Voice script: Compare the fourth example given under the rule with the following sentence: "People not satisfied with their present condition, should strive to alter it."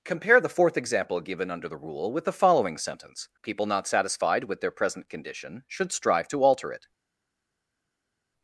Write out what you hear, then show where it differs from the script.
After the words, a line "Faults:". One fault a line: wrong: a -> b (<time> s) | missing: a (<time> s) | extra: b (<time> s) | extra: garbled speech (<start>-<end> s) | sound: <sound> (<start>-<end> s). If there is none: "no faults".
Compare the fourth example given under the rule with the following sentence: "People not satisfied with their present condition, should strive to alter it."
Faults:
no faults